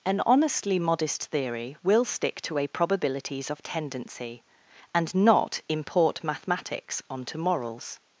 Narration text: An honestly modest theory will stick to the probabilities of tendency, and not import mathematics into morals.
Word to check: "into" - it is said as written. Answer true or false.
false